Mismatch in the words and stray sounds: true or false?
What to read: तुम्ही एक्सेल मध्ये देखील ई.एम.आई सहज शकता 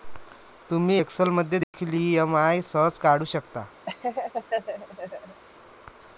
true